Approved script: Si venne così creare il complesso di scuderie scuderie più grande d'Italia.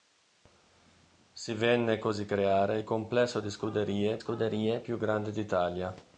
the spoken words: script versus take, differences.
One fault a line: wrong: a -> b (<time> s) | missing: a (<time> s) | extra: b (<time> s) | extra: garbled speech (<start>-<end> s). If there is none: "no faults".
no faults